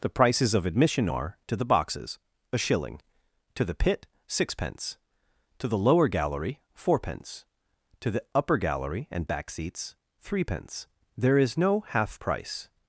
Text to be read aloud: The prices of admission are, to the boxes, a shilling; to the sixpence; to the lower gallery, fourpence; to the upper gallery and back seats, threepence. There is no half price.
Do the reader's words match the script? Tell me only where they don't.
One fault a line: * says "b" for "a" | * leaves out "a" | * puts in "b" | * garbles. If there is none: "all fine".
* puts in "pit"